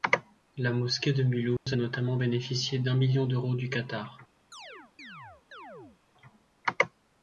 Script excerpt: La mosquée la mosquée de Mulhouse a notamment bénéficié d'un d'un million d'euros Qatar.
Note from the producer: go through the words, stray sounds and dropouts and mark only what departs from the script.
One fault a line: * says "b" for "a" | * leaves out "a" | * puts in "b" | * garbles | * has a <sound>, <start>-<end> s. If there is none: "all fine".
* leaves out "la mosquée"
* has a dropout, 1.6-1.7 s
* leaves out "d'un"
* puts in "du"
* has a chirp, 4.5-6.0 s